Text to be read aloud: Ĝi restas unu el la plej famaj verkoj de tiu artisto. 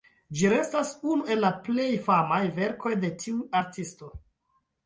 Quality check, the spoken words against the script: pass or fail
pass